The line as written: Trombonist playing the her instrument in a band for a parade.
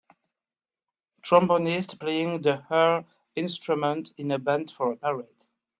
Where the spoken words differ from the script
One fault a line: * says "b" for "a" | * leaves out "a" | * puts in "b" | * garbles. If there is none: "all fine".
all fine